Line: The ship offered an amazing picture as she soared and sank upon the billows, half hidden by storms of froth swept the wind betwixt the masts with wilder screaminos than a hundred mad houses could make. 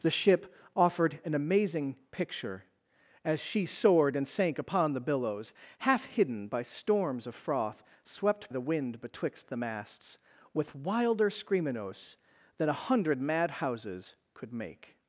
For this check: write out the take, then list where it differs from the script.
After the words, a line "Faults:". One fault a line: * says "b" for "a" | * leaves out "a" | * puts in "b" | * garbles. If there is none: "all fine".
The ship offered an amazing picture as she soared and sank upon the billows, half hidden by storms of froth swept the wind betwixt the masts with wilder screaminos than a hundred mad houses could make.
Faults:
all fine